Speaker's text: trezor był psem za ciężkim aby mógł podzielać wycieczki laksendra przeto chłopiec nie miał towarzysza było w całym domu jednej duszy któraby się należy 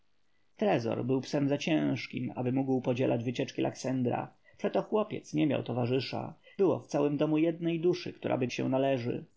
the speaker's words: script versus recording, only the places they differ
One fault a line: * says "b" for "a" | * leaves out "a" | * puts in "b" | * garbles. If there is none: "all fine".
all fine